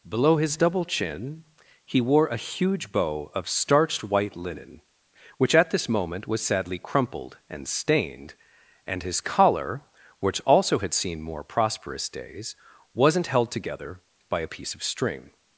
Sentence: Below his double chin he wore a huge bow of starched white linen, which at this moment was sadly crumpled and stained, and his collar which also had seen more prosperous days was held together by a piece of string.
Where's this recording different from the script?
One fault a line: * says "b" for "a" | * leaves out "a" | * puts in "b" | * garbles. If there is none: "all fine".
* says "wasn't" for "was"